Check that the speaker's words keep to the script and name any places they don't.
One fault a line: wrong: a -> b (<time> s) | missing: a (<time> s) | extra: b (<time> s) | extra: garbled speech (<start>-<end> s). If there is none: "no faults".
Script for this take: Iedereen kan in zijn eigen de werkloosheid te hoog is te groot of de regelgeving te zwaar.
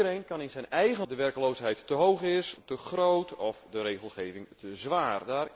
no faults